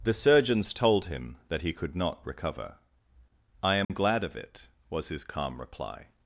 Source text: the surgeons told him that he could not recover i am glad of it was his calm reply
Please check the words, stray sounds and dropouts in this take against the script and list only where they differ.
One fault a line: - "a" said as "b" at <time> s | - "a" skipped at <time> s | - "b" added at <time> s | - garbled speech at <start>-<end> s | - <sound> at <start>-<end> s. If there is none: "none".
- dropout at 3.8-3.9 s